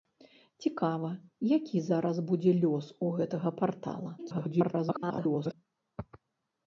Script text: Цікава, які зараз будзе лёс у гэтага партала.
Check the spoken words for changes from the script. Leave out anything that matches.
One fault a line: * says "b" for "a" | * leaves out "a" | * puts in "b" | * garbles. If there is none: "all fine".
* garbles